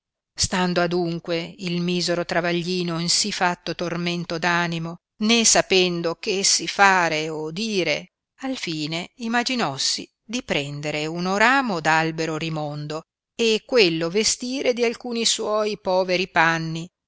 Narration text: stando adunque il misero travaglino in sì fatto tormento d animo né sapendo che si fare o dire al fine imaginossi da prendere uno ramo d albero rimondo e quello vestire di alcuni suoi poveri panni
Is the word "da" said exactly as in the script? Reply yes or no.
no